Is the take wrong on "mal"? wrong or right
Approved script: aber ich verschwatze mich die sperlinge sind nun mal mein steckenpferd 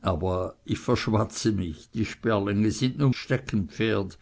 wrong